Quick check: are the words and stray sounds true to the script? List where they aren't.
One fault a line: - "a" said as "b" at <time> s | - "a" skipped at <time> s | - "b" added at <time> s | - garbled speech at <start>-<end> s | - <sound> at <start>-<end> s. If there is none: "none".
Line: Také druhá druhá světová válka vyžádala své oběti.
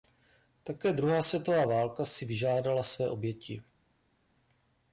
- "druhá" skipped at 1.2 s
- "si" added at 2.0 s